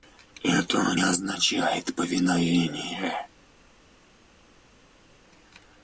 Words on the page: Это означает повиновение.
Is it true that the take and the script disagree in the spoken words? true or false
false